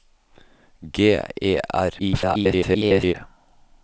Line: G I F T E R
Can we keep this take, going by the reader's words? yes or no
no